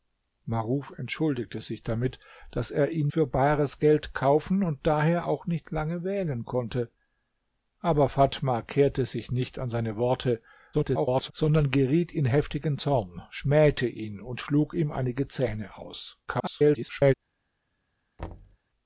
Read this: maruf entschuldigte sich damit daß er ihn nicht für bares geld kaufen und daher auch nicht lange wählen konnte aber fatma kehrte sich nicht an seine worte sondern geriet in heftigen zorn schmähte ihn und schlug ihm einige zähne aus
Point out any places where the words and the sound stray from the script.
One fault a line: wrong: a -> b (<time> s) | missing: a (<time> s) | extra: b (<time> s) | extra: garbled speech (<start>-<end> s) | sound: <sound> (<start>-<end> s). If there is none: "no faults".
missing: nicht (3.1 s)
extra: garbled speech (10.7-11.3 s)
extra: garbled speech (16.3-17.1 s)
sound: thud (18.2-18.6 s)